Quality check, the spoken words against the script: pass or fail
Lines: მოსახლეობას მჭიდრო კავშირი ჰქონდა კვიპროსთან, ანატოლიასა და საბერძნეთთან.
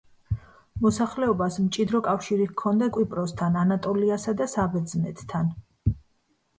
pass